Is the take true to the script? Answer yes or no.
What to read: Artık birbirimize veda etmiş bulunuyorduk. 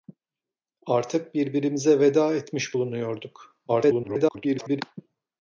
no